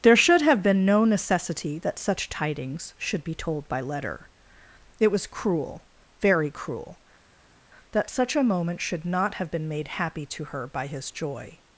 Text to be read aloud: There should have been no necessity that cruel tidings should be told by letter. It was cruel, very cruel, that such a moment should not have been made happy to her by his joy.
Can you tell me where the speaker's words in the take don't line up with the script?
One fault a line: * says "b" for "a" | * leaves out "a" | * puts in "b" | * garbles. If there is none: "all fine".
* says "such" for "cruel"